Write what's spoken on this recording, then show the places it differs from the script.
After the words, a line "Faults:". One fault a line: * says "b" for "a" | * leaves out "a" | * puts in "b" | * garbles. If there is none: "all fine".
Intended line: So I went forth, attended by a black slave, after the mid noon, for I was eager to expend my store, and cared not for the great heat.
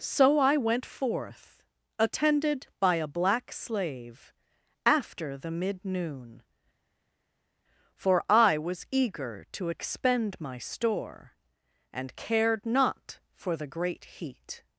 So I went forth, attended by a black slave, after the mid noon, for I was eager to expend my store, and cared not for the great heat.
Faults:
all fine